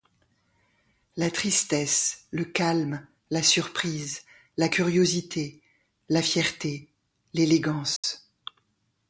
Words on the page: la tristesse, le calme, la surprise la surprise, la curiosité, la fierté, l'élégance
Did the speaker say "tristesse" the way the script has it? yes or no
yes